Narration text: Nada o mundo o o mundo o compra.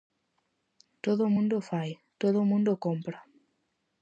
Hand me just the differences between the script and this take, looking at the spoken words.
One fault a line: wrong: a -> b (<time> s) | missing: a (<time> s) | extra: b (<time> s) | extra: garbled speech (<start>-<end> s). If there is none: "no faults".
wrong: Nada -> Todo (1.1 s)
extra: fai todo (1.7 s)